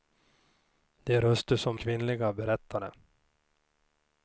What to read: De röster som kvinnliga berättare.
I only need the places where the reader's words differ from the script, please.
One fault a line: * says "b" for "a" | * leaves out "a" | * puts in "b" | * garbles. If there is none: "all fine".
all fine